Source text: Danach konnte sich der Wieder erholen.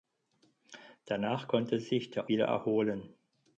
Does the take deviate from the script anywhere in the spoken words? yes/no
no